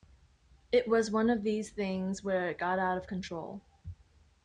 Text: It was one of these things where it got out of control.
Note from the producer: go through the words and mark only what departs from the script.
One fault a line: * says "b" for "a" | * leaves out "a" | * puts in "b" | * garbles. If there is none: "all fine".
all fine